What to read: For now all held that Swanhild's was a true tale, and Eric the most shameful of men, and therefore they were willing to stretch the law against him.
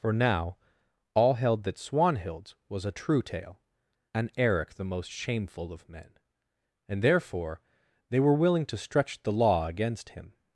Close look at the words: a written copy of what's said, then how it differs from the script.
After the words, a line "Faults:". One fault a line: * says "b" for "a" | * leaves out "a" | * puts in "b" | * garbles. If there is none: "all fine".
For now all held that Swanhild's was a true tale, and Eric the most shameful of men, and therefore they were willing to stretch the law against him.
Faults:
all fine